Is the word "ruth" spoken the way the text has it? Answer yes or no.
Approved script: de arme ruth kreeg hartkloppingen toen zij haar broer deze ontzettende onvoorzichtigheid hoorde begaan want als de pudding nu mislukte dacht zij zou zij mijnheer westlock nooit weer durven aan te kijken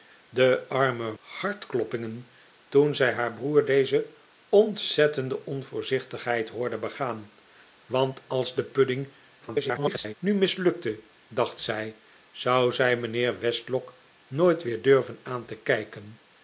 no